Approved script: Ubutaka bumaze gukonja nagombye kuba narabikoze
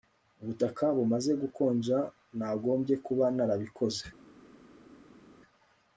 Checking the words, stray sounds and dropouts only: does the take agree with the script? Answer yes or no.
yes